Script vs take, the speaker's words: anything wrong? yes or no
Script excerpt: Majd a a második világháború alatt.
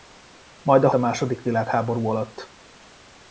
no